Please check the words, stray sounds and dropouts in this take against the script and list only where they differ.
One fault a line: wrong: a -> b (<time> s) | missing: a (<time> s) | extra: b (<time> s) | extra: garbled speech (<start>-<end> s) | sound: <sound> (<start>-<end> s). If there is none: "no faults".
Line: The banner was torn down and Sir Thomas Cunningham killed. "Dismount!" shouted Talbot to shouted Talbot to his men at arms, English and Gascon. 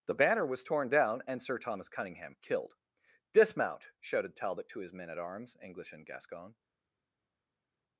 missing: shouted Talbot to (4.8 s)